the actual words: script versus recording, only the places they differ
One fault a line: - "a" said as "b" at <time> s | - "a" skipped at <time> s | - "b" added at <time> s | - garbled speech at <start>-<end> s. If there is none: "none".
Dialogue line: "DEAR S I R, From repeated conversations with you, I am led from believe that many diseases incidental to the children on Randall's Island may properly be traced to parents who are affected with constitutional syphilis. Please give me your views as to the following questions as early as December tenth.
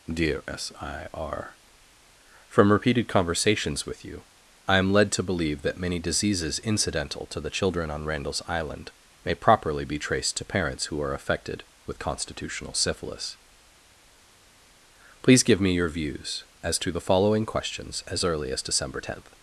- "from" said as "to" at 5.1 s